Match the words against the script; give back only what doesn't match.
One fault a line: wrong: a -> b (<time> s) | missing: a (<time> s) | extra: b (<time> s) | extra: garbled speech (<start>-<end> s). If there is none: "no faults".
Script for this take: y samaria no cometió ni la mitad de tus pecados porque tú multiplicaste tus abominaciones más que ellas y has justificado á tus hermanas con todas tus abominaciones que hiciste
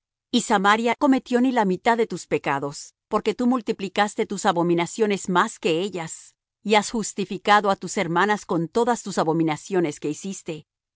missing: no (1.0 s)